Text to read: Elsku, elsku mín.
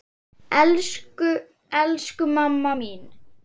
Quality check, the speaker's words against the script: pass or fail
fail